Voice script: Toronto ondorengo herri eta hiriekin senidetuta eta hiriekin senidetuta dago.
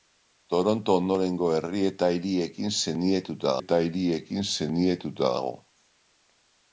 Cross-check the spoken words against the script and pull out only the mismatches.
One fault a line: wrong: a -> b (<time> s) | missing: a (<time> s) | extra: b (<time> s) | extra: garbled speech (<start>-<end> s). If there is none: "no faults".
no faults